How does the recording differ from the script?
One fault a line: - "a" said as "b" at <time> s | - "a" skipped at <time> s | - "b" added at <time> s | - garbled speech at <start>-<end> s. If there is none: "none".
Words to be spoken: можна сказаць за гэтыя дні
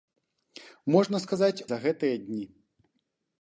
none